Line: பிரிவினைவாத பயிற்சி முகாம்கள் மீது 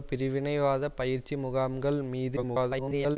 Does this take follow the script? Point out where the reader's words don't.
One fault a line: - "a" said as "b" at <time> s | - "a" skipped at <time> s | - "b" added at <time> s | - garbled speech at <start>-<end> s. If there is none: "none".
- garbled speech at 2.4-3.2 s